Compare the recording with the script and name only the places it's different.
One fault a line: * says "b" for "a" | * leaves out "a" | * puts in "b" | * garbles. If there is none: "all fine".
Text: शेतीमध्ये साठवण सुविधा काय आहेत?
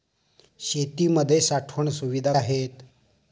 * leaves out "काय"